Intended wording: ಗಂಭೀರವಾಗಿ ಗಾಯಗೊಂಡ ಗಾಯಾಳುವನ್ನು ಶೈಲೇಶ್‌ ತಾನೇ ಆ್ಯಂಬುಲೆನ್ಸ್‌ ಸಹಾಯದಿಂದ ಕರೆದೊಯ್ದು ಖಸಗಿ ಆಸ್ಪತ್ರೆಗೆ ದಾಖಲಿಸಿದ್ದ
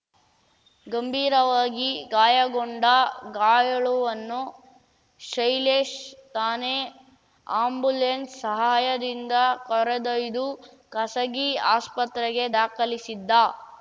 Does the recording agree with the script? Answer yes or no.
yes